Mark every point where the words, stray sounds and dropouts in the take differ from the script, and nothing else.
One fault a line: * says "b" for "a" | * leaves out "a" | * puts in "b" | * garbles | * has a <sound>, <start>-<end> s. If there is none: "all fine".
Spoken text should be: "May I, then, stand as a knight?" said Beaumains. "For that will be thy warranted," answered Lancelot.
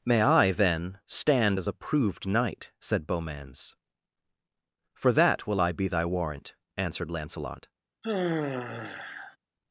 * puts in "proved"
* puts in "I"
* says "warrant" for "warranted"
* has a sigh, 8.0-9.4 s